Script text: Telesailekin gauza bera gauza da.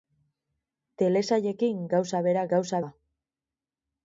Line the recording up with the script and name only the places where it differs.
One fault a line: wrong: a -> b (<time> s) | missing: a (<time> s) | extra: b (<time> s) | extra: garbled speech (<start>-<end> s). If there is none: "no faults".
no faults